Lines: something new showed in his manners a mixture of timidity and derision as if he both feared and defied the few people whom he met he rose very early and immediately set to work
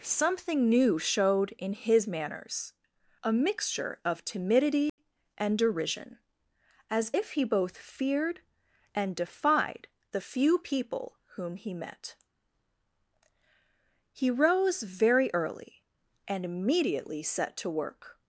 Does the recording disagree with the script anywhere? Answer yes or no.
no